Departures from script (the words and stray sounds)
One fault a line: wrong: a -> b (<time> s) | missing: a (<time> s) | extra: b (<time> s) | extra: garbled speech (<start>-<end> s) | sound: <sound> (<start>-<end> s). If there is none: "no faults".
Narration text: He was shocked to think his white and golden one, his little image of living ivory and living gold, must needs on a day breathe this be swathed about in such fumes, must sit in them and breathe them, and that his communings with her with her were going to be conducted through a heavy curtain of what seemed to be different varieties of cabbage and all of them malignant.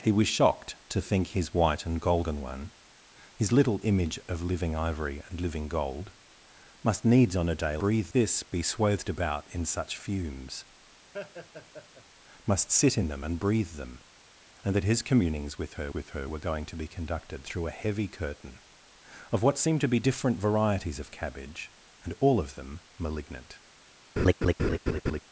sound: laugh (11.1-12.0 s)
sound: laugh (24.2-25.2 s)